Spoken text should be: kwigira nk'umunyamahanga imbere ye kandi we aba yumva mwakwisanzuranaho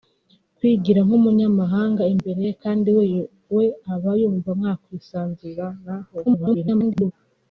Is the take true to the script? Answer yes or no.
no